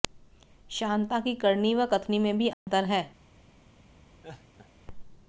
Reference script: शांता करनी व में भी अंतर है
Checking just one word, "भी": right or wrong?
right